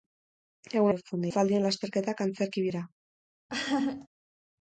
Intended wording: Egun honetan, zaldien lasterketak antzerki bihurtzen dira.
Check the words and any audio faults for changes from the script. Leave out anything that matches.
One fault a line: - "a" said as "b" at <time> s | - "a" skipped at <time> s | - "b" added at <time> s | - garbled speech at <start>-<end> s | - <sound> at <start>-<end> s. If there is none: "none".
- "honetan" said as "bihurtzen" at 0.9 s
- "bihurtzen" skipped at 2.7 s
- laugh at 3.5-4.1 s